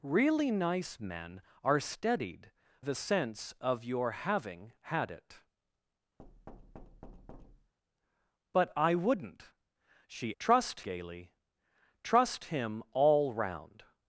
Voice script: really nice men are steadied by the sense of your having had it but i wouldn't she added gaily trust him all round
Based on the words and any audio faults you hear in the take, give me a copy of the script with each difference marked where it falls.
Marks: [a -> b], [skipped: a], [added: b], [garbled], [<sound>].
really nice men are steadied [skipped: by] the sense of your having had it [thud] but i wouldn't she [added -> trust] gaily trust him all round